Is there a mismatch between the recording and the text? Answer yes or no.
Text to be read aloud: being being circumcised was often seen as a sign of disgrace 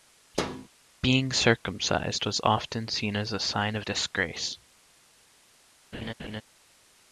yes